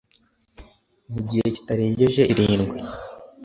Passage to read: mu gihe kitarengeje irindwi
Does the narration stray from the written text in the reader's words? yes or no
no